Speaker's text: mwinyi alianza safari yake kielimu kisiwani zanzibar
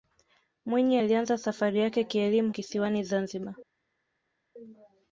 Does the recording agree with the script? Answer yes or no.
yes